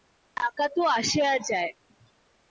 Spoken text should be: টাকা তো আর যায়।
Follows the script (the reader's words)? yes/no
no